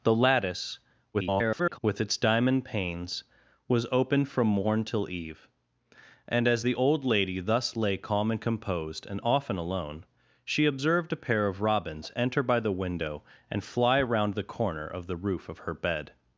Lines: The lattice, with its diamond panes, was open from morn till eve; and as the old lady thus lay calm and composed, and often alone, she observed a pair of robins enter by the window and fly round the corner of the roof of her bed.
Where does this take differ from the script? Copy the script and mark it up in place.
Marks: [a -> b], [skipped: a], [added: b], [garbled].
The lattice, [garbled] with its diamond panes, was open from morn till eve; and as the old lady thus lay calm and composed, and often alone, she observed a pair of robins enter by the window and fly round the corner of the roof of her bed.